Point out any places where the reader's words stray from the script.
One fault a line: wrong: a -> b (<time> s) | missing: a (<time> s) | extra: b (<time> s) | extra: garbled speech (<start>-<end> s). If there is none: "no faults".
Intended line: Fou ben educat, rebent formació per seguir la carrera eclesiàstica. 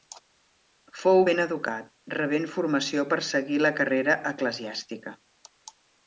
no faults